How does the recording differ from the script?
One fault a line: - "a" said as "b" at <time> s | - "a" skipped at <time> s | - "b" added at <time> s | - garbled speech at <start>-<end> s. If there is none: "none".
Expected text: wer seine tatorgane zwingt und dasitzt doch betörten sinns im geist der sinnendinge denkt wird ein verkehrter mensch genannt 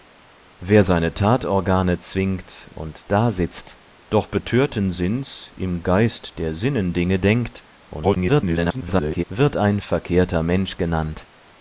- garbled speech at 7.9-9.2 s